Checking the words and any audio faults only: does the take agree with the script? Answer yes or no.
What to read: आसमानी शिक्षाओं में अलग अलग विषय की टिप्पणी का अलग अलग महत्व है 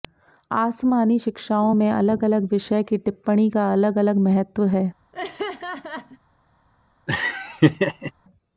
no